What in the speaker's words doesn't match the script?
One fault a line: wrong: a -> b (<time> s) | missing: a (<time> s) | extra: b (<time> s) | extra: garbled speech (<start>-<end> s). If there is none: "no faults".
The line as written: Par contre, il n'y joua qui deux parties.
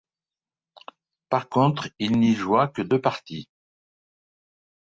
wrong: qui -> que (2.7 s)